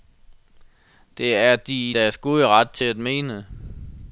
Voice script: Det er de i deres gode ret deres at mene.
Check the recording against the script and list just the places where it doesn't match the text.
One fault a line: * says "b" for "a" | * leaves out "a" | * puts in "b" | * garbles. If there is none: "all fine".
* says "til" for "deres"